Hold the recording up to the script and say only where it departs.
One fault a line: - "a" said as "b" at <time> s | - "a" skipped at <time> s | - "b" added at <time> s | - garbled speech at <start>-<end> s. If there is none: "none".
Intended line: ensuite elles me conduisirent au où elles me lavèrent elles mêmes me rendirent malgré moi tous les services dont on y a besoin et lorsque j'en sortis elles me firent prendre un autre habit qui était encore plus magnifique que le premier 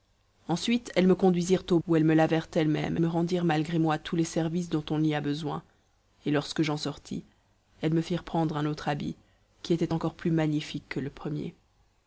none